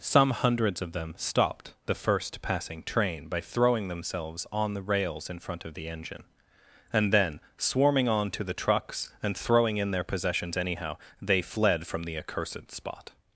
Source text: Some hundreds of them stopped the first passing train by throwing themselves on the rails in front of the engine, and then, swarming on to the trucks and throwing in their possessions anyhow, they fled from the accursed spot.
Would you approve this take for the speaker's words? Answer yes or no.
yes